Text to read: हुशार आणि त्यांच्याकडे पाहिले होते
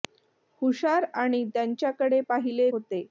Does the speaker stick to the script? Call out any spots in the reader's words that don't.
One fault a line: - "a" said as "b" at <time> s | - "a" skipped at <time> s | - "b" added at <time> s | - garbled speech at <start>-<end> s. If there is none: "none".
none